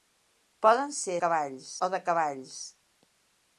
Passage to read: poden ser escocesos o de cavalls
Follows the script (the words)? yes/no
no